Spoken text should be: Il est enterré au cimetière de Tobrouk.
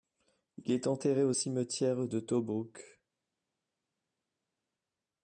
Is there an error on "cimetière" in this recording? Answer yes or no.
no